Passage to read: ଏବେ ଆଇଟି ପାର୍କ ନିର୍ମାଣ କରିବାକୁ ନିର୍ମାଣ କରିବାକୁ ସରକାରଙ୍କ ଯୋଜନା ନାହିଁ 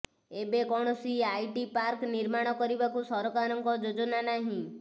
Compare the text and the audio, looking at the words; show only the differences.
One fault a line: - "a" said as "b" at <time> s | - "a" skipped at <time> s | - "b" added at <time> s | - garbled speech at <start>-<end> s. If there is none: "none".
- "କୌଣସି" added at 0.7 s
- "ନିର୍ମାଣ କରିବାକୁ" skipped at 3.1 s